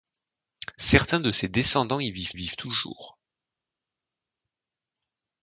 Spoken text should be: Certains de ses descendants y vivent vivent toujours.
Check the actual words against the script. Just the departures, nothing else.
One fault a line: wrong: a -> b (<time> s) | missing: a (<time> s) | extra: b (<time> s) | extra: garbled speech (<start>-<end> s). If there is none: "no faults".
no faults